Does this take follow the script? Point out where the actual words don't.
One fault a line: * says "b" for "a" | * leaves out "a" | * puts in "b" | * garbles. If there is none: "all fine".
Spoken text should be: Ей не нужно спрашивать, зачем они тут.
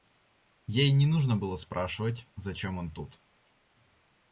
* puts in "было"
* says "он" for "они"